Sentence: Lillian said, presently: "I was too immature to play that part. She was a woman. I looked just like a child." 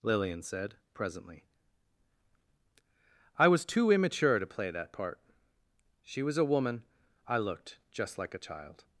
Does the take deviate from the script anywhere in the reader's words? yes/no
no